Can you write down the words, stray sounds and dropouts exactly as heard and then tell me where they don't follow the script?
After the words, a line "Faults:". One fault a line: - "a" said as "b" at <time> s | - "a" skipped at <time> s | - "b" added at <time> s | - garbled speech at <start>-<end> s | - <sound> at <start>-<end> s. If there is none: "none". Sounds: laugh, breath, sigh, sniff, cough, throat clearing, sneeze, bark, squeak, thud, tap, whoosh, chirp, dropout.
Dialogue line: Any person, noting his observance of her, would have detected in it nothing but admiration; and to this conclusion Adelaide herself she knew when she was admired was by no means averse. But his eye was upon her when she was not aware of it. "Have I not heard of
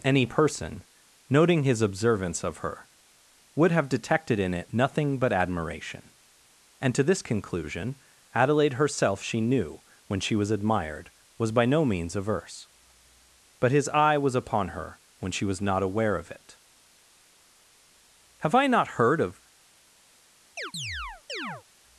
Any person, noting his observance of her, would have detected in it nothing but admiration; and to this conclusion Adelaide herself she knew when she was admired was by no means averse. But his eye was upon her when she was not aware of it. "Have I not heard of
Faults:
- chirp at 20.6-21.6 s